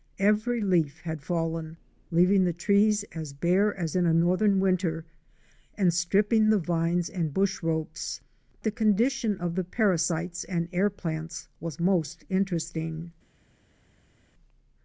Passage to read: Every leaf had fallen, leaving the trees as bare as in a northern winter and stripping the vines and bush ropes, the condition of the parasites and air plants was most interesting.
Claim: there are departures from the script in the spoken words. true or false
false